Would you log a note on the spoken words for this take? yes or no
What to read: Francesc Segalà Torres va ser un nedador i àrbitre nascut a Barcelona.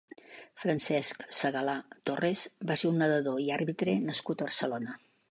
no